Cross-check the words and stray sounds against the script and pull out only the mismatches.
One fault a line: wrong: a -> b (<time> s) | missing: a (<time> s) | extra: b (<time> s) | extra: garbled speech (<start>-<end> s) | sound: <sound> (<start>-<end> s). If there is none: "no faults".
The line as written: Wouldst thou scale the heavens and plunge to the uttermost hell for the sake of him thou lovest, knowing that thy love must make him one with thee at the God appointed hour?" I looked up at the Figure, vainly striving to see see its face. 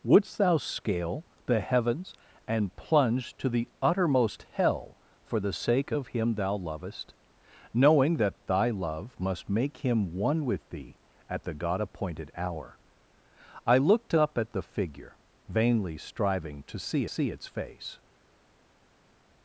no faults